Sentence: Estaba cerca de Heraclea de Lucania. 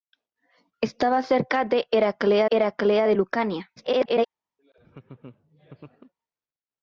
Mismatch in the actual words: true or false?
true